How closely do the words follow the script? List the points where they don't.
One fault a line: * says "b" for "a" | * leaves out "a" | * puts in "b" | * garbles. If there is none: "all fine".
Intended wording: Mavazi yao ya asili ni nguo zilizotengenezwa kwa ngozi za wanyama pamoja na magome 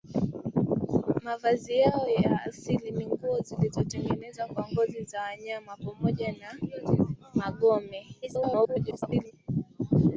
* garbles